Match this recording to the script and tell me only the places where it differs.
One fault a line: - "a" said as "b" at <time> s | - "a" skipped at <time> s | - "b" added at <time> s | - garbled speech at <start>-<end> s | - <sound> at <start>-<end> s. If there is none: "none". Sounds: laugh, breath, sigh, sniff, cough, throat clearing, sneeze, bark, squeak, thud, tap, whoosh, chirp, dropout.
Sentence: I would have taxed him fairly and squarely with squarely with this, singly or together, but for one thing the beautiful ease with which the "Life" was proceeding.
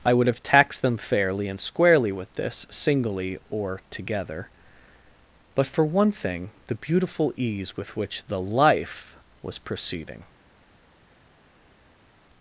- "him" said as "them" at 0.8 s
- "squarely with" skipped at 2.3 s